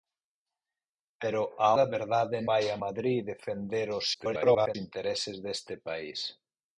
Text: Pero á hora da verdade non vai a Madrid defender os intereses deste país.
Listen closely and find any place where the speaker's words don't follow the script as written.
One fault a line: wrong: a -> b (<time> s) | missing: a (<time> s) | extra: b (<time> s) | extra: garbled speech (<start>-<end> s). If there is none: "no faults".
missing: hora (1.7 s)
missing: non (2.4 s)
extra: garbled speech (4.1-4.8 s)